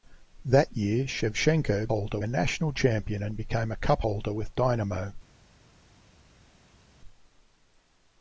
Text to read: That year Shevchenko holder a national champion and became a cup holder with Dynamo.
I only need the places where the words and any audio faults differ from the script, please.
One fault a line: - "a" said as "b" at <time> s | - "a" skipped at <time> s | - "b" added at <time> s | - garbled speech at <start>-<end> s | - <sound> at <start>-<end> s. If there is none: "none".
none